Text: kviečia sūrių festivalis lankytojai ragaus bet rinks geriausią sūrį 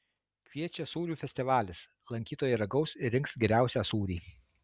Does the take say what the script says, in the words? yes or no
no